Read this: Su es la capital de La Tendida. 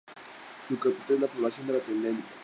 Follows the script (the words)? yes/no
no